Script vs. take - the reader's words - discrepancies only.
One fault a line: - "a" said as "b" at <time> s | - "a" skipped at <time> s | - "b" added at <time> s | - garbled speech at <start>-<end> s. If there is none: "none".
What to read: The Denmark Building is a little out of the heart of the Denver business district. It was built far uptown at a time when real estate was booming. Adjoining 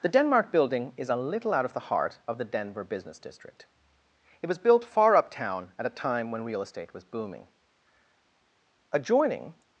none